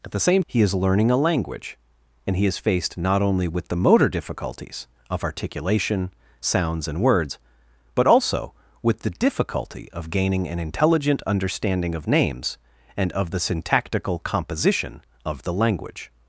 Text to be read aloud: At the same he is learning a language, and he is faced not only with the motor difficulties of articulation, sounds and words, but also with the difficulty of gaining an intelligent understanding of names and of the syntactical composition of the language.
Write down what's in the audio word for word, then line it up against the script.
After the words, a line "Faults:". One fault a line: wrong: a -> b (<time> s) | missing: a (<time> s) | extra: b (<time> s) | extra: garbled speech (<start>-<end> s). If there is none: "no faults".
At the same he is learning a language, and he is faced not only with the motor difficulties of articulation, sounds and words, but also with the difficulty of gaining an intelligent understanding of names and of the syntactical composition of the language.
Faults:
no faults